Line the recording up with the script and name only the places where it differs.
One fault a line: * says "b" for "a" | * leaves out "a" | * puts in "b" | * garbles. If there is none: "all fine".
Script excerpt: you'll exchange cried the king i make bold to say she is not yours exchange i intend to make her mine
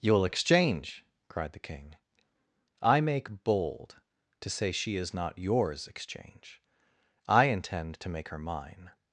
all fine